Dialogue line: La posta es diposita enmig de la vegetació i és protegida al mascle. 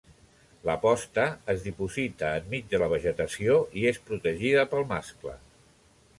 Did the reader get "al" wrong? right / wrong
wrong